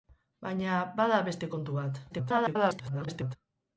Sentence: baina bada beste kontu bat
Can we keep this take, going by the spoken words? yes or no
no